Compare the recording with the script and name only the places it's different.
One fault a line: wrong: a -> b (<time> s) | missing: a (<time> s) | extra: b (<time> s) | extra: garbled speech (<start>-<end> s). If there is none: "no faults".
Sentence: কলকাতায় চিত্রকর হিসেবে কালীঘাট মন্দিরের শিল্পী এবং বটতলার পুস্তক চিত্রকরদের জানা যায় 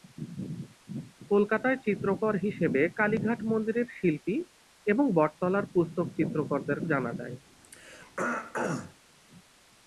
no faults